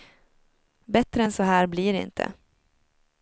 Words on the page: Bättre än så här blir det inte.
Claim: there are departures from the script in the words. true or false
false